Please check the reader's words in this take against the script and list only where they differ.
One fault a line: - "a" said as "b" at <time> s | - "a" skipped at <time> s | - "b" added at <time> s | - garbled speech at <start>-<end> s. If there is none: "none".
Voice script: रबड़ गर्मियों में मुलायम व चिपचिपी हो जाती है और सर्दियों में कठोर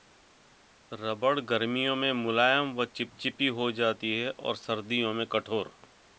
none